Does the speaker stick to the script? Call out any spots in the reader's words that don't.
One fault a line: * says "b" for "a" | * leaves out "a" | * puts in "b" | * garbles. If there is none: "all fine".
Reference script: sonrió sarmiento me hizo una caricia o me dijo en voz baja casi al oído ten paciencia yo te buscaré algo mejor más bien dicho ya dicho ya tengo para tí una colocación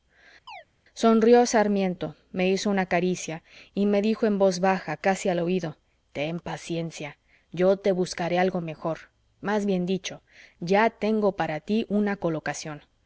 * says "y" for "o"
* leaves out "dicho ya"